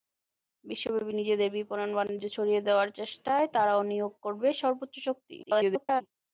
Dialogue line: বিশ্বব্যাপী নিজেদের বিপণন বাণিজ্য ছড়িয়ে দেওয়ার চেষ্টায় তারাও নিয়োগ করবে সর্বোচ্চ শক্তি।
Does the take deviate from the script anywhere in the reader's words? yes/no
yes